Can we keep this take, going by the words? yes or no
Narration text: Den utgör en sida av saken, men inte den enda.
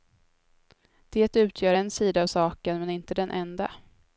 no